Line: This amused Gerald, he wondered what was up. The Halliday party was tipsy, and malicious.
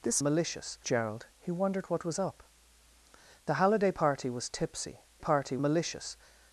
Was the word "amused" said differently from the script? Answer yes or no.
yes